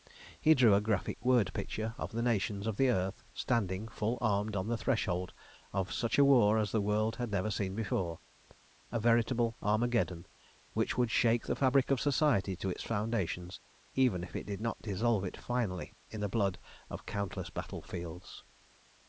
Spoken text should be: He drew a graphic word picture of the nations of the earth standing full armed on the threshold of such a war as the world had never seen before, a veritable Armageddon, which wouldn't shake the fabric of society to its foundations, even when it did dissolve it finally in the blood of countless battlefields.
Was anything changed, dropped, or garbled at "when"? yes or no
yes